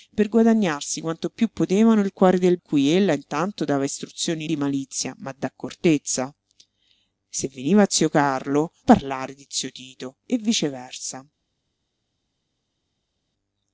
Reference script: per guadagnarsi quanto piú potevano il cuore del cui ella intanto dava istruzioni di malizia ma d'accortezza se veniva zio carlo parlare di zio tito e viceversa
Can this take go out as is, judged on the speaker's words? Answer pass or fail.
pass